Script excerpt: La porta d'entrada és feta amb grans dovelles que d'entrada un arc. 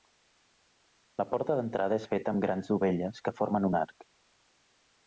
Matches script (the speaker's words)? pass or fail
fail